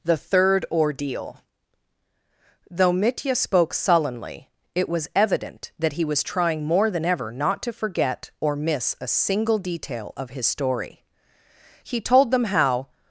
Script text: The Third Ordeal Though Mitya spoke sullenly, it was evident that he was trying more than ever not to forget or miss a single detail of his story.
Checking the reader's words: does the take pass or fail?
fail